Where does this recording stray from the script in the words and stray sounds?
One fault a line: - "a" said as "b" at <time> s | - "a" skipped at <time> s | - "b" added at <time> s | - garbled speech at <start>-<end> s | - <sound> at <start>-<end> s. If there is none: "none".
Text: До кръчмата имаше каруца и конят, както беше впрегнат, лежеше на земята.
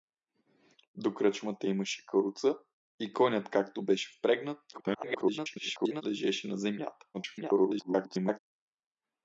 - garbled speech at 4.7-6.0 s
- garbled speech at 7.1-8.4 s